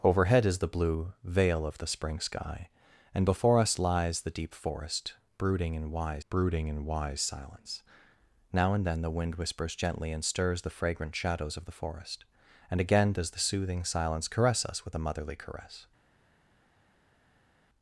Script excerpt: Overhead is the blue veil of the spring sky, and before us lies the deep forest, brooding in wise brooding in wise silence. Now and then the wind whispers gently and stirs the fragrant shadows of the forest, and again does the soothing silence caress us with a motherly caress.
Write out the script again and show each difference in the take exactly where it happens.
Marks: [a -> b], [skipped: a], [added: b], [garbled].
Overhead is the blue veil of the spring sky, and before us lies the deep forest, brooding in wise brooding in wise silence. Now and then the wind whispers gently and stirs the fragrant shadows of the forest, and again does the soothing silence caress us with a motherly caress.